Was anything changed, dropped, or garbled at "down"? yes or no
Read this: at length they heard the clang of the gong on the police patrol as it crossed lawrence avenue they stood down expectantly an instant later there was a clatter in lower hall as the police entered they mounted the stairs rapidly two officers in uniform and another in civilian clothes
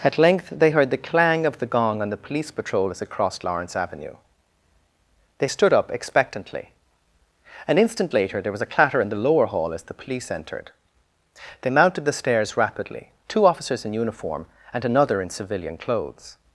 yes